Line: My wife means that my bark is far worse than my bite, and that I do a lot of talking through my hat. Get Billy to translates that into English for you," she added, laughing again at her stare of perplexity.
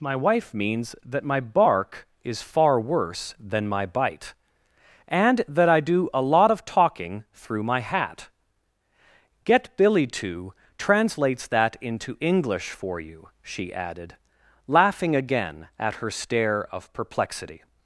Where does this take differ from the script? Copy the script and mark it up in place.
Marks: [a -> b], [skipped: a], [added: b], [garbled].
My wife means that my bark is far worse than my bite, and that I do a lot of talking through my hat. Get Billy to translates that into English for you," she added, laughing again at her stare of perplexity.